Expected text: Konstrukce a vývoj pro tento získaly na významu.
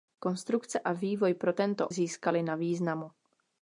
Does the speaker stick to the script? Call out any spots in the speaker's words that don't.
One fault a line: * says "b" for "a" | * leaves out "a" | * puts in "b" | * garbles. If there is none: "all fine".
all fine